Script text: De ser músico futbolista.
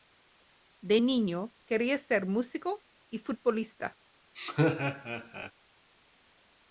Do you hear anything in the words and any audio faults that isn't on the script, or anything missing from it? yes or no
yes